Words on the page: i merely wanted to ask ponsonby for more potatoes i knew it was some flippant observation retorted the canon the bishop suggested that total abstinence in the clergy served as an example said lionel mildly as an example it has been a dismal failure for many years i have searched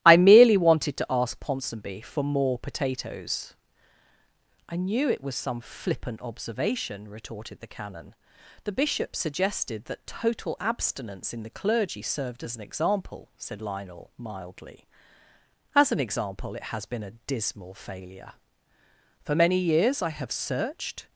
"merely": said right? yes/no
yes